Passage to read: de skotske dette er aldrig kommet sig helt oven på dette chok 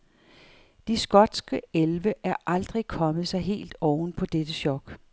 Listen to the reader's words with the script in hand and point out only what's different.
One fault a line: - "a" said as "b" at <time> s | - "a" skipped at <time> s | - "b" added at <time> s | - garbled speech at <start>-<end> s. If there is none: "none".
- "dette" said as "elve" at 1.7 s